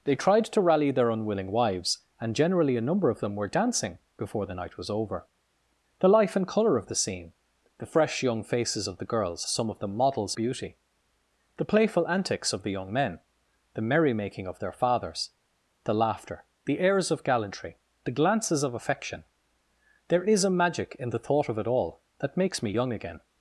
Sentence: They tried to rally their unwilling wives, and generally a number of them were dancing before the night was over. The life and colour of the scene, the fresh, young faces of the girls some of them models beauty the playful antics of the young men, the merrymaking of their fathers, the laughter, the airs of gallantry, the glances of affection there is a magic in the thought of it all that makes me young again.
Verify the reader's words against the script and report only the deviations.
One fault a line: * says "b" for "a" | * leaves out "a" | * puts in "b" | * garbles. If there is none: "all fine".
all fine